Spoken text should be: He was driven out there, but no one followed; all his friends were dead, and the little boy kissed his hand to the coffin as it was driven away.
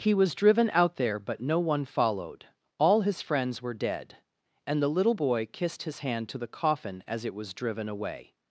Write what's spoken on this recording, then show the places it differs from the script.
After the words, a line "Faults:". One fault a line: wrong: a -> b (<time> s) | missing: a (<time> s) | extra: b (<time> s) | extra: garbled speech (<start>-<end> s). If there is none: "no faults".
He was driven out there, but no one followed; all his friends were dead, and the little boy kissed his hand to the coffin as it was driven away.
Faults:
no faults